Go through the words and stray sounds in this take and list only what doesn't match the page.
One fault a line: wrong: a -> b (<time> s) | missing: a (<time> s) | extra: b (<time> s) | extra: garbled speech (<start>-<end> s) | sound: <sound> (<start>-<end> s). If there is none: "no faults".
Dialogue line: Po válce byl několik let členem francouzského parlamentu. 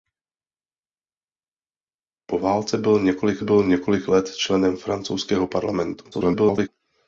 extra: byl několik (3.4 s)
extra: garbled speech (6.1-6.7 s)